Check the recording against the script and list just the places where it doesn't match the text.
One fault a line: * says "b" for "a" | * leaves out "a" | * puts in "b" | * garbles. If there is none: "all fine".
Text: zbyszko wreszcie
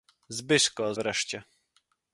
all fine